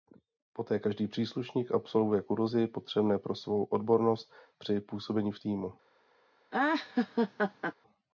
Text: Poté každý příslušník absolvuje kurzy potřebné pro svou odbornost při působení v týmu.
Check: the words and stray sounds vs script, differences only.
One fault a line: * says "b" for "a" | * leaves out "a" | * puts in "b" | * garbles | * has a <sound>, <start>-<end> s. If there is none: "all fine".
* has a laugh, 6.5-7.7 s